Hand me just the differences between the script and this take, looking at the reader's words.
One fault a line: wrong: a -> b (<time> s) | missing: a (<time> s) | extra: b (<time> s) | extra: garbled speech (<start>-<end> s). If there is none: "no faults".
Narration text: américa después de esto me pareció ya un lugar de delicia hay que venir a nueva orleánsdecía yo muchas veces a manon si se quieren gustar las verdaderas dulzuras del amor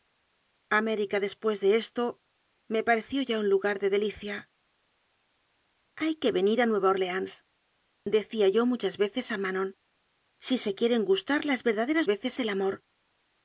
wrong: dulzuras -> veces (12.0 s)